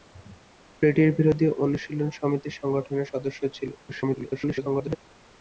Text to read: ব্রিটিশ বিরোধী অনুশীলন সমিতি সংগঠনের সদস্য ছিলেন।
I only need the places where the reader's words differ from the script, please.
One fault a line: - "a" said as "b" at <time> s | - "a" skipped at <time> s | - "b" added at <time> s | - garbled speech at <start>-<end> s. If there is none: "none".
- garbled speech at 3.9-5.0 s